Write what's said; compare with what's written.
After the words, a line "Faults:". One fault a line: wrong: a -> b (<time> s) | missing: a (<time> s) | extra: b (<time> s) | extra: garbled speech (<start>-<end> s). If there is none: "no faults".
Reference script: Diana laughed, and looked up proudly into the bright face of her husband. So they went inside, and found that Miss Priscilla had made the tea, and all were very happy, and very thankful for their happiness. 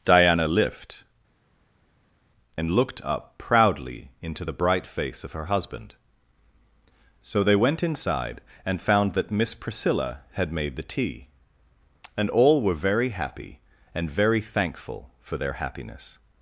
Diana lift, and looked up proudly into the bright face of her husband. So they went inside, and found that Miss Priscilla had made the tea, and all were very happy, and very thankful for their happiness.
Faults:
wrong: laughed -> lift (0.5 s)